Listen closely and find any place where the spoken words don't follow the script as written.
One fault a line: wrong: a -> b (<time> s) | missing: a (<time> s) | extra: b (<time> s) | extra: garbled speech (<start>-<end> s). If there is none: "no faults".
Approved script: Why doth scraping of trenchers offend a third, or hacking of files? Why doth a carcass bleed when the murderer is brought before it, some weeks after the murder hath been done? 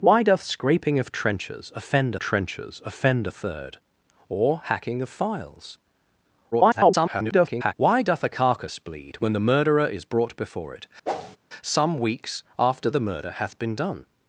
extra: trenchers offend (2.2 s)
extra: garbled speech (6.5-7.7 s)